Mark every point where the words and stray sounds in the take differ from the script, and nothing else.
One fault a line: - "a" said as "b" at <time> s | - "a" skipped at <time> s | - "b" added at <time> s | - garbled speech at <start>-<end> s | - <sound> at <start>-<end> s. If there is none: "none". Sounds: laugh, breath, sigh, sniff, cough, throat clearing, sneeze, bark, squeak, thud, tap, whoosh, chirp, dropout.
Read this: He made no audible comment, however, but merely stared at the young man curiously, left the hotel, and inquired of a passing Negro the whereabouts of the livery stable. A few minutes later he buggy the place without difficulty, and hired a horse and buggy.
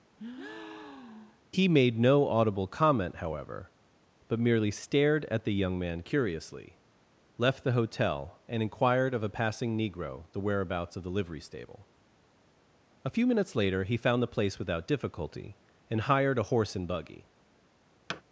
- breath at 0.2-1.4 s
- "buggy" said as "found" at 14.0 s
- thud at 18.1-18.2 s